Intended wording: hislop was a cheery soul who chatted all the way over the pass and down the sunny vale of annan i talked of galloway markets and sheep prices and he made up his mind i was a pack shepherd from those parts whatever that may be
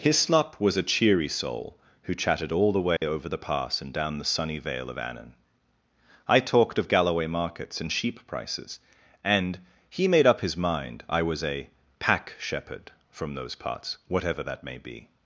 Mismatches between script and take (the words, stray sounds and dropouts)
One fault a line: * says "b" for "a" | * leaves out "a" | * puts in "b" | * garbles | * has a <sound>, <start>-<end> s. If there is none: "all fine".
* has a dropout, 3.0-3.0 s